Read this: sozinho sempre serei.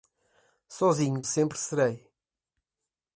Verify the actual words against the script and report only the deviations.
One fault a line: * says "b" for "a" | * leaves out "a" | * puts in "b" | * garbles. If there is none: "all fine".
all fine